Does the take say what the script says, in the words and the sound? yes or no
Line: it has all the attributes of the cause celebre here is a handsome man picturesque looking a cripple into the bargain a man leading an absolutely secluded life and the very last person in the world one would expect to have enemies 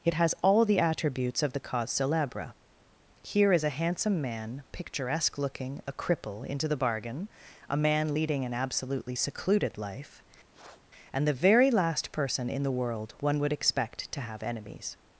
no